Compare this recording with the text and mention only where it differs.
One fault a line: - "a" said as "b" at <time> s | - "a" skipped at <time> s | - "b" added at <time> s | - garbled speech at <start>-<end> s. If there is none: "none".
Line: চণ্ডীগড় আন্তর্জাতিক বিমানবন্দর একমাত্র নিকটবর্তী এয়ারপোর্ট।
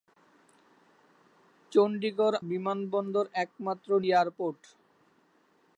- "আন্তর্জাতিক" skipped at 2.4 s
- "নিকটবর্তী" skipped at 3.9 s